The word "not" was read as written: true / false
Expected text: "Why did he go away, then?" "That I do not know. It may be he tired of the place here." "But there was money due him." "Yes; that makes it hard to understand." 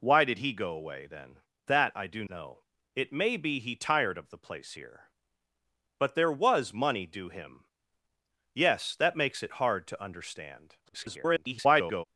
false